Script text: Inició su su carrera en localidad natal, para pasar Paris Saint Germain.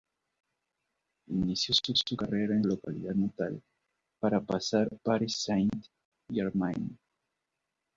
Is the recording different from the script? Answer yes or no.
no